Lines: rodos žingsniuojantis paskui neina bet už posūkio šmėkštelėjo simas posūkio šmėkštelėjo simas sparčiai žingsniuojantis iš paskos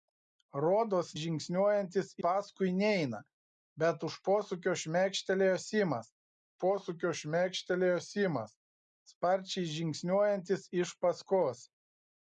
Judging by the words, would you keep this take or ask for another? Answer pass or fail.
pass